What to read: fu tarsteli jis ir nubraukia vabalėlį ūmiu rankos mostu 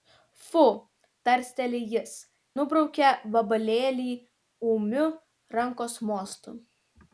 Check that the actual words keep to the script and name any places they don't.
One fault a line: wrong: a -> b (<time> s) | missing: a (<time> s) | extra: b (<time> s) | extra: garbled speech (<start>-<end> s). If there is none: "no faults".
missing: ir (2.1 s)